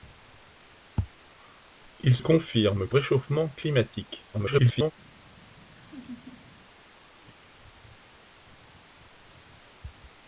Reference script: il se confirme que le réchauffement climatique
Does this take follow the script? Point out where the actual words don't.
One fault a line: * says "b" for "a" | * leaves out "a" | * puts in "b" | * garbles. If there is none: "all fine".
* leaves out "se"
* leaves out "le"
* garbles